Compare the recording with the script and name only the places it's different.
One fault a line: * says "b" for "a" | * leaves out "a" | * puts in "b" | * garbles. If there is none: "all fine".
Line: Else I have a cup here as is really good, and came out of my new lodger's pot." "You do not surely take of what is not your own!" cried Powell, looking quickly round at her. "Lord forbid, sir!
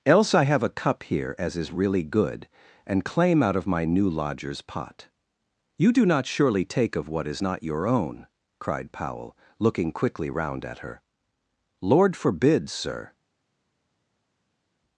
* says "claim" for "came"